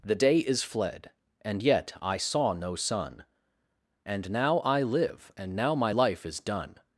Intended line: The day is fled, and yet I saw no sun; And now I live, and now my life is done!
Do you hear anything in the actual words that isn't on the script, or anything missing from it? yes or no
no